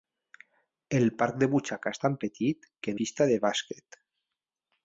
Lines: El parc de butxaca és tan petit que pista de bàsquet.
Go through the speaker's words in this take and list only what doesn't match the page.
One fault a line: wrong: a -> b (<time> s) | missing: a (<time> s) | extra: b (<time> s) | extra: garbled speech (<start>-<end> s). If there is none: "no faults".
no faults